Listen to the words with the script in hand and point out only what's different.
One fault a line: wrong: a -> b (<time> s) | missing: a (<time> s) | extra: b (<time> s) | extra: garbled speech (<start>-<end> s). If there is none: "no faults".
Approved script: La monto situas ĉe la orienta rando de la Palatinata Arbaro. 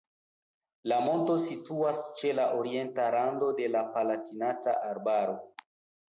no faults